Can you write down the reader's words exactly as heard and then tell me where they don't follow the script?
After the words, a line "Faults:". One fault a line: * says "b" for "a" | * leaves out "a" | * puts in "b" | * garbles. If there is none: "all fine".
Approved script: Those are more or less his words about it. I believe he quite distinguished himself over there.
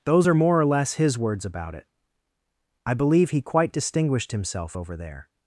Those are more or less his words about it. I believe he quite distinguished himself over there.
Faults:
all fine